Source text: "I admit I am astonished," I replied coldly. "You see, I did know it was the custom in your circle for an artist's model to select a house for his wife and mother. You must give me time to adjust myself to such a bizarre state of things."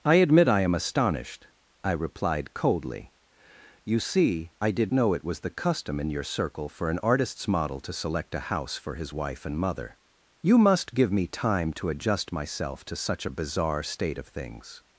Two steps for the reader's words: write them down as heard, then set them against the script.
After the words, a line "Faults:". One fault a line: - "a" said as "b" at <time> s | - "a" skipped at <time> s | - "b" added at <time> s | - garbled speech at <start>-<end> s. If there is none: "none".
"I admit I am astonished," I replied coldly. "You see, I did know it was the custom in your circle for an artist's model to select a house for his wife and mother. You must give me time to adjust myself to such a bizarre state of things."
Faults:
none